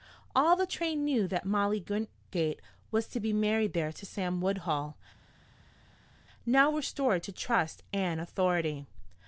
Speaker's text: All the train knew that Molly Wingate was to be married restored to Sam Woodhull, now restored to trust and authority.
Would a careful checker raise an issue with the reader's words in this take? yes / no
yes